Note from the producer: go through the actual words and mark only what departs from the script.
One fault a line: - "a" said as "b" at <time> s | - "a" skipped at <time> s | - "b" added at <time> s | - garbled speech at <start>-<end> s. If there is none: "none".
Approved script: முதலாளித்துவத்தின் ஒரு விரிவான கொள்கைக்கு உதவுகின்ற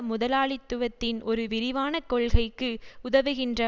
none